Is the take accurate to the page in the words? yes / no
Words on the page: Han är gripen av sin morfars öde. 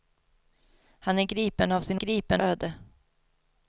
no